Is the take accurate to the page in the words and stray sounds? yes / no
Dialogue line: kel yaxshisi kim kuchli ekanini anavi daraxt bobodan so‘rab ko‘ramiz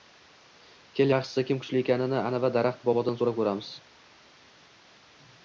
yes